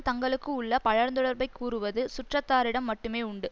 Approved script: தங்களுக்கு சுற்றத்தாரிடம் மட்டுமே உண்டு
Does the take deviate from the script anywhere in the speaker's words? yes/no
yes